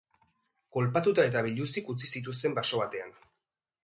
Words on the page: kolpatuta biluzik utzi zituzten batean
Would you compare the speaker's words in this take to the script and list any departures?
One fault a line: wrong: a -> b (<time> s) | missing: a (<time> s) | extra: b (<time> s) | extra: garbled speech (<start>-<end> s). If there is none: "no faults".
extra: eta (1.3 s)
extra: baso (2.6 s)